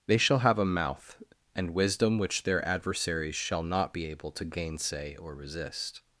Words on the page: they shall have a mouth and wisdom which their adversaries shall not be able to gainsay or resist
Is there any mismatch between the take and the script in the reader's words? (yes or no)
no